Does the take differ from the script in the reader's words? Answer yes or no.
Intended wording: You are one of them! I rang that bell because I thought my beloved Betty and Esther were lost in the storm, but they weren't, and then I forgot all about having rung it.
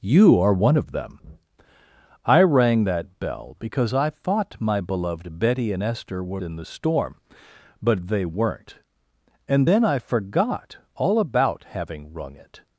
yes